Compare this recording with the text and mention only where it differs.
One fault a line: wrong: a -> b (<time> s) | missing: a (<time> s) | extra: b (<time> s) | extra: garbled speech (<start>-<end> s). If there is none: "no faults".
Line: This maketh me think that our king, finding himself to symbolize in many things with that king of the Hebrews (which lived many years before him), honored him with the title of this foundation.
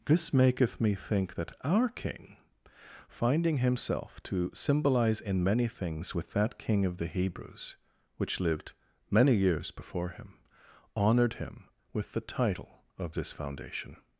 no faults